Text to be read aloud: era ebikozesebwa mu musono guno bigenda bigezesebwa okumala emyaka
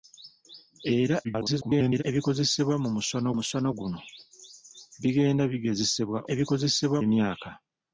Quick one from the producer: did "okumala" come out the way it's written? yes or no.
no